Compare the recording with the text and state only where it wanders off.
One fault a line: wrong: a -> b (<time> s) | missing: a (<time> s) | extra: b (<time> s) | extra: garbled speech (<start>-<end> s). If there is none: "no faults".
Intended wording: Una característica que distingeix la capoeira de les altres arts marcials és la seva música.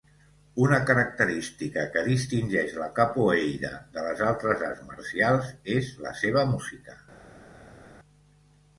no faults